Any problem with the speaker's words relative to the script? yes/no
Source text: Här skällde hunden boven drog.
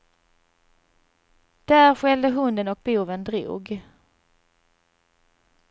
yes